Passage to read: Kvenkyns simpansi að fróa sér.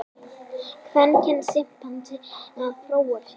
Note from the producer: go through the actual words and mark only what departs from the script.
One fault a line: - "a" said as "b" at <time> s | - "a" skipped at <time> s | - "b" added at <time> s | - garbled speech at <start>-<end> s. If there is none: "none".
none